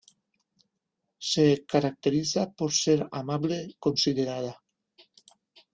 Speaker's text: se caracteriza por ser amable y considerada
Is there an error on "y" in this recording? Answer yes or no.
yes